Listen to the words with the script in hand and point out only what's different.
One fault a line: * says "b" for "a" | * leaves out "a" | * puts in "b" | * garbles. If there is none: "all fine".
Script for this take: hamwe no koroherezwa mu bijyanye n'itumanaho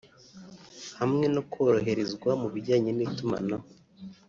all fine